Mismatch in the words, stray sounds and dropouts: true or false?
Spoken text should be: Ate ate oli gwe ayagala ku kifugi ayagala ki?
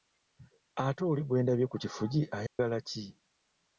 true